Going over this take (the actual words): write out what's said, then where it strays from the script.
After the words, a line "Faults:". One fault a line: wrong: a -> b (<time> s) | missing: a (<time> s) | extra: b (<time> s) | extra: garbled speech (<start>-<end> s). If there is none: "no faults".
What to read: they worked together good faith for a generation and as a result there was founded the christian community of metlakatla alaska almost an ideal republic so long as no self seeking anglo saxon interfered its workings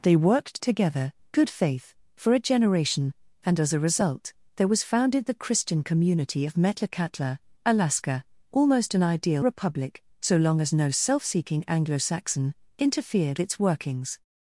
they worked together good faith for a generation and as a result there was founded the christian community of metlakatla alaska almost an ideal republic so long as no self seeking anglo saxon interfered its workings
Faults:
no faults